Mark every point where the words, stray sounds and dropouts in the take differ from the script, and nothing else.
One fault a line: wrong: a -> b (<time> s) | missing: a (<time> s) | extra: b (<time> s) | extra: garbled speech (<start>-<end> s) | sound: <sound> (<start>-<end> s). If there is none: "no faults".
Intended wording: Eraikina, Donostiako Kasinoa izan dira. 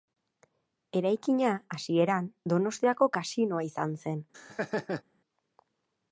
extra: hasieran (1.8 s)
wrong: dira -> zen (4.0 s)
sound: laugh (4.3-5.0 s)